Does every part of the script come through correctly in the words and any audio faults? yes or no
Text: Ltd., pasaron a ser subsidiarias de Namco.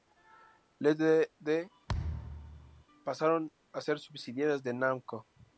no